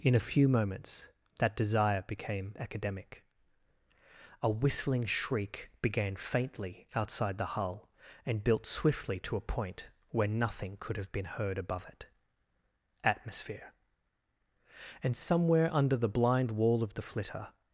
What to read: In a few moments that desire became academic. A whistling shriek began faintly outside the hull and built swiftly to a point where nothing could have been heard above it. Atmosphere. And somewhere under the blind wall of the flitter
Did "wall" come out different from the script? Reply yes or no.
no